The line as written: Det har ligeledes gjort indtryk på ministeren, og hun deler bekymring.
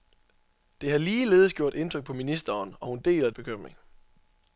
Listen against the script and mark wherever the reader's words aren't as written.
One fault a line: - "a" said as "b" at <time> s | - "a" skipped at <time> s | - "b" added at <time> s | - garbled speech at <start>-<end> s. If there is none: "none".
none